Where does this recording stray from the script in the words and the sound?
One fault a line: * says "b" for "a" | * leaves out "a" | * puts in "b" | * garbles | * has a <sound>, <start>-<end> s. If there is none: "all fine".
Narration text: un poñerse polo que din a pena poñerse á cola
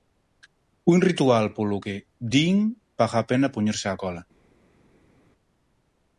* says "ritual" for "poñerse"
* puts in "paga"